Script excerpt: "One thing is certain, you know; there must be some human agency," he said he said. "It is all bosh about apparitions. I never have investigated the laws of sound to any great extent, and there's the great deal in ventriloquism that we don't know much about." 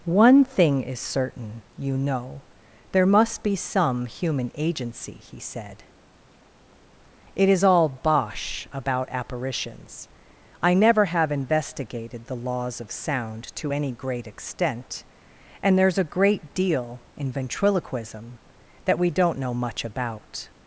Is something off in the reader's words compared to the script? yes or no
yes